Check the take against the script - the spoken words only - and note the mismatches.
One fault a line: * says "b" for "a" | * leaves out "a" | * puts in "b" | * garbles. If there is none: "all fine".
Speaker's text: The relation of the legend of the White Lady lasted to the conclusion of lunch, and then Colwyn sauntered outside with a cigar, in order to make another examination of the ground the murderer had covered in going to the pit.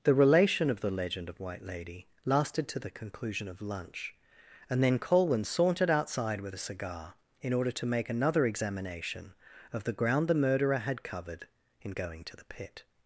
* leaves out "the"